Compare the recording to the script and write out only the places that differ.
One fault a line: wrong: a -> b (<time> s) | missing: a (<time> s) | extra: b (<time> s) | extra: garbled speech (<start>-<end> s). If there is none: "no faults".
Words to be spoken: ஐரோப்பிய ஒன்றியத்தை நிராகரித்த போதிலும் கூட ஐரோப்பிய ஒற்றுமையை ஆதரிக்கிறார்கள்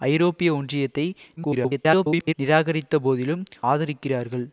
extra: garbled speech (1.4-2.3 s)
missing: கூட ஐரோப்பிய ஒற்றுமையை (3.4 s)